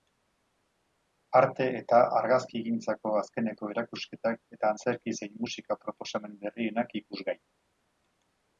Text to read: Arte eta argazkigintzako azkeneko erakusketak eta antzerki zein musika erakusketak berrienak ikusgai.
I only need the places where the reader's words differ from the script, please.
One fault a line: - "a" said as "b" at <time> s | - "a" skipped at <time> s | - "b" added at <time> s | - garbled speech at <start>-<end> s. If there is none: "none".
- "erakusketak" said as "proposamen" at 5.9 s